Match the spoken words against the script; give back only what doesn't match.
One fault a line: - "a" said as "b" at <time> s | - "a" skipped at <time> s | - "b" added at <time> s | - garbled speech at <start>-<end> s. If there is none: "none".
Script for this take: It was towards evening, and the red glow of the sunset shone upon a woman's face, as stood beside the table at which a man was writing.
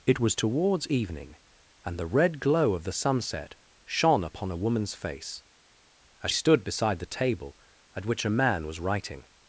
none